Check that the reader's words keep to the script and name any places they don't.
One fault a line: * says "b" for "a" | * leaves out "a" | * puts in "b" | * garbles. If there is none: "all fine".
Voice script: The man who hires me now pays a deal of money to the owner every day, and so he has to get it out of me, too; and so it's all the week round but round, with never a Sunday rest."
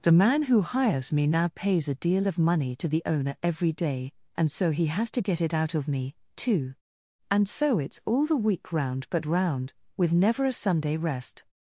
all fine